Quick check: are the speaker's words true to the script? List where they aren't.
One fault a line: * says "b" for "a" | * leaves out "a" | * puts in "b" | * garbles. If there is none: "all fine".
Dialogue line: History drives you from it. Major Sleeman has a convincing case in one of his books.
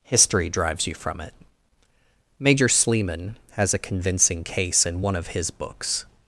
all fine